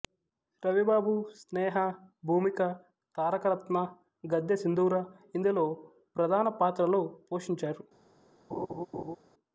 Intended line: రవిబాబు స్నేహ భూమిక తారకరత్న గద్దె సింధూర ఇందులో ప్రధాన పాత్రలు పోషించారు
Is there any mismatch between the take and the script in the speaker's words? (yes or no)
no